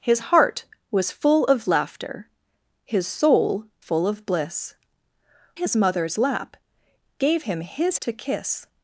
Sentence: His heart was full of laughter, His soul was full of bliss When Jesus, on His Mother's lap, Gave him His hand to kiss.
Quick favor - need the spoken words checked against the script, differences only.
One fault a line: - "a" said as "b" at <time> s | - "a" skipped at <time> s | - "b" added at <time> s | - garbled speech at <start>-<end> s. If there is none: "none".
- "was" skipped at 3.6 s
- "When Jesus on" skipped at 4.7 s
- "hand" skipped at 8.0 s